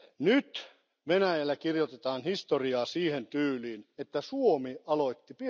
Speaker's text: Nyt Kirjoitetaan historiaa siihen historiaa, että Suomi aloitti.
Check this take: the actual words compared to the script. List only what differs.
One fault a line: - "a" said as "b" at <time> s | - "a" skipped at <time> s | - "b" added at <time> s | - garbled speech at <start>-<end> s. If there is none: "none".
- "Venäjällä" added at 1.1 s
- "historiaa" said as "tyyliin" at 3.3 s